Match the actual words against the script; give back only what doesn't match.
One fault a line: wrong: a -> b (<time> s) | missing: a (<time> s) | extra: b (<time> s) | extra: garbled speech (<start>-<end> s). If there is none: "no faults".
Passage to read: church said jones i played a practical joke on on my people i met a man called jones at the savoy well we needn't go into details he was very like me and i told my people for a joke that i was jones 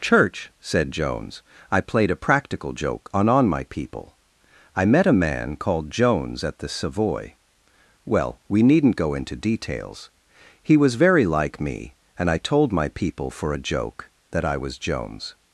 no faults